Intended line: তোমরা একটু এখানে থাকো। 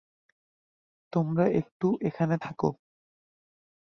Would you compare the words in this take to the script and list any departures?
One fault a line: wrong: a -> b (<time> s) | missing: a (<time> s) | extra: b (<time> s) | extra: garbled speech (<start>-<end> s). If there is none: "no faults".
no faults